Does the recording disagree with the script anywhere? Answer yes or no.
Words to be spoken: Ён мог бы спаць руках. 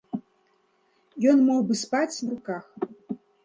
no